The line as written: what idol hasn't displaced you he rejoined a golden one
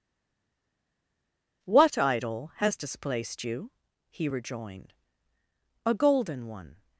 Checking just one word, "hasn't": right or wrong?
wrong